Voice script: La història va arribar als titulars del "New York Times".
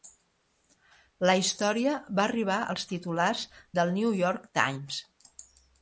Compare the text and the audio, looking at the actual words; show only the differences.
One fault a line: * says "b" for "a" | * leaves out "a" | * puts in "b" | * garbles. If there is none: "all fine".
all fine